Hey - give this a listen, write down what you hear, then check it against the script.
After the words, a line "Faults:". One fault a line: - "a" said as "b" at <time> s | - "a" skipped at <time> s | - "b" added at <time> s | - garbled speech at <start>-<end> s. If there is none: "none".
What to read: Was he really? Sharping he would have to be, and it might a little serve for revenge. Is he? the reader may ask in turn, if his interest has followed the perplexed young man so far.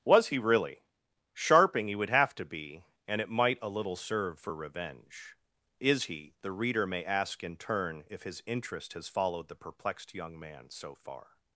Was he really? Sharping he would have to be, and it might a little serve for revenge. Is he? the reader may ask in turn, if his interest has followed the perplexed young man so far.
Faults:
none